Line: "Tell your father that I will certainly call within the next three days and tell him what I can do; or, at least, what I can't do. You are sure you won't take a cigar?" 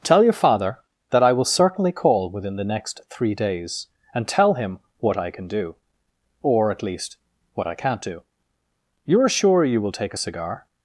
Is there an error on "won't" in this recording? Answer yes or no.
yes